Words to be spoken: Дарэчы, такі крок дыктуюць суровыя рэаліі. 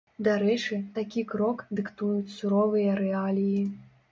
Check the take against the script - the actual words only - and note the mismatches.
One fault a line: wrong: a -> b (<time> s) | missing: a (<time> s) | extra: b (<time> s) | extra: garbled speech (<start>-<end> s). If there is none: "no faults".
no faults